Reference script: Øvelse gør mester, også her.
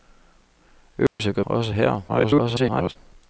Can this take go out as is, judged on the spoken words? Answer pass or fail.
fail